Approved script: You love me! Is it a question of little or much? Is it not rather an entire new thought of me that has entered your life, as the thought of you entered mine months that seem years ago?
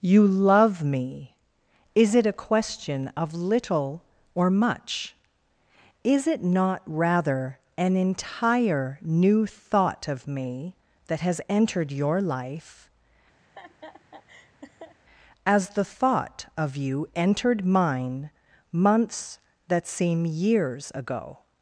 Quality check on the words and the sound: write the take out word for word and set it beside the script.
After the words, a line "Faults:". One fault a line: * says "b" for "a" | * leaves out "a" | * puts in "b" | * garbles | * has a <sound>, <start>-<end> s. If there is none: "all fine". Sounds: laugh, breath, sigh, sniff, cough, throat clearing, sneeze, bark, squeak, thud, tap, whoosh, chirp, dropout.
You love me! Is it a question of little or much? Is it not rather an entire new thought of me that has entered your life, as the thought of you entered mine months that seem years ago?
Faults:
* has a laugh, 13.4-15.0 s